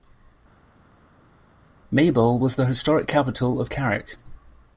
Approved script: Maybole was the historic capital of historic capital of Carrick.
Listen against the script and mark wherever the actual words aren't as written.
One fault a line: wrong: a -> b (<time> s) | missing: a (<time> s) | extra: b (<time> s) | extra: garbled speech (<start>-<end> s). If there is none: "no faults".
missing: historic capital of (3.7 s)